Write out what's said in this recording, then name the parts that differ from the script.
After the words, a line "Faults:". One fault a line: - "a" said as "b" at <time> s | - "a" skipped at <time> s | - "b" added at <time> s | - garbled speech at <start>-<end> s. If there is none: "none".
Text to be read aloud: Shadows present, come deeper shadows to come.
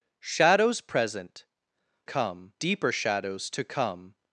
Shadows present, come deeper shadows to come.
Faults:
none